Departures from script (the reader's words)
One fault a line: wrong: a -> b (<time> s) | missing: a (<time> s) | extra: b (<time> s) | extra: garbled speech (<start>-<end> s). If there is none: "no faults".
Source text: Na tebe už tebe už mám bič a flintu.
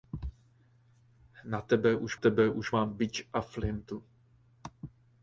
no faults